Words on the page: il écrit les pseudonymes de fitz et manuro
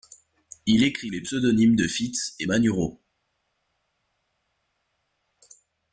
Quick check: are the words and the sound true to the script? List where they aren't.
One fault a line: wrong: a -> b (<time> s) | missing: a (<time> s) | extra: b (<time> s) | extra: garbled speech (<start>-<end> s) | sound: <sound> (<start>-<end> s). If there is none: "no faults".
no faults